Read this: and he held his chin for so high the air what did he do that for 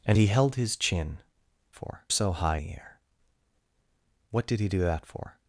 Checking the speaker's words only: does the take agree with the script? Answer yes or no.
yes